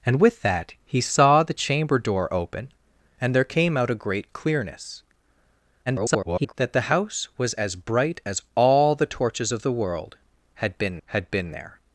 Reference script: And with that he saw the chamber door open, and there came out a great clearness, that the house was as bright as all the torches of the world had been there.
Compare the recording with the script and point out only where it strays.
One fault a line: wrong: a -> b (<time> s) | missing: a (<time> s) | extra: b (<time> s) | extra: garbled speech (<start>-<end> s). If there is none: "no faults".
extra: garbled speech (5.9-6.5 s)
extra: had been (11.1 s)